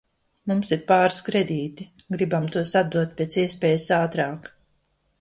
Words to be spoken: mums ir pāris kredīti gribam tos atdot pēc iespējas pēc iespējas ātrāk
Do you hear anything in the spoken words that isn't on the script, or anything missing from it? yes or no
yes